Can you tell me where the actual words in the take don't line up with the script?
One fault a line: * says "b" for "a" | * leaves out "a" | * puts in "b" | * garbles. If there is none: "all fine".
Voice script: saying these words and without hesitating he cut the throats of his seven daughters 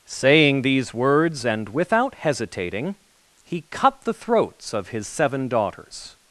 all fine